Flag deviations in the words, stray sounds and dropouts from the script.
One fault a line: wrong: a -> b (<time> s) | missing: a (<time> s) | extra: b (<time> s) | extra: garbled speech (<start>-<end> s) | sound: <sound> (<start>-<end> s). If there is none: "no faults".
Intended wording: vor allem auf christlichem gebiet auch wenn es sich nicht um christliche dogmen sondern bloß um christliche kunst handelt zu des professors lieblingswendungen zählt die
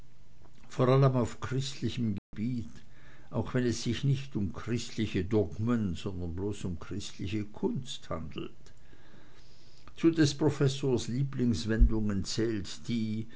sound: dropout (2.2-2.3 s)